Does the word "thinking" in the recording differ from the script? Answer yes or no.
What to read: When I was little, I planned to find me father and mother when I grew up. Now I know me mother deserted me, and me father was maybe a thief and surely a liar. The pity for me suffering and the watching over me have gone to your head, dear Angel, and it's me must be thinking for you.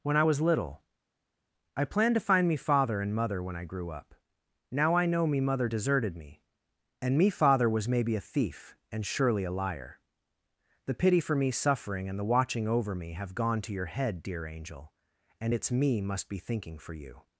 no